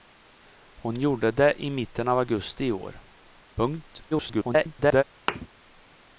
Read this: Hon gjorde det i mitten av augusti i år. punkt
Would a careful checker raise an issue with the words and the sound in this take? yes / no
yes